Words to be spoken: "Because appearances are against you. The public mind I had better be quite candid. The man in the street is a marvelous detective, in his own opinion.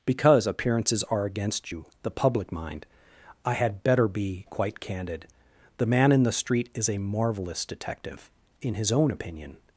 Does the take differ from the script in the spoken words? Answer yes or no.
no